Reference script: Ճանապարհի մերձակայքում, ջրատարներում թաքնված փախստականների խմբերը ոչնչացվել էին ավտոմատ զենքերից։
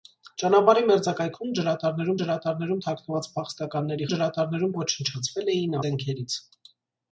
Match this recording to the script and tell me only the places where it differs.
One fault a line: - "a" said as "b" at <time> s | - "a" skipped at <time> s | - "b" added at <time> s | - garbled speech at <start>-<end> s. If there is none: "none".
- "ջրատարներում" added at 2.2 s
- "խմբերը" said as "ջրատարներում" at 4.1 s
- "ավտոմատ" skipped at 5.8 s